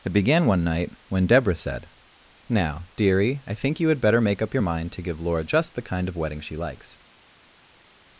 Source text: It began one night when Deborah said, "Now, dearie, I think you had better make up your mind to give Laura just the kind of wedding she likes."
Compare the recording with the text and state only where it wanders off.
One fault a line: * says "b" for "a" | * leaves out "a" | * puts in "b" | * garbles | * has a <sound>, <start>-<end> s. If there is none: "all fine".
all fine